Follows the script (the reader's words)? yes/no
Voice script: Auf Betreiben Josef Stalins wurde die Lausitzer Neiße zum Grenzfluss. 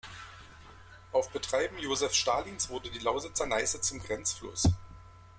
yes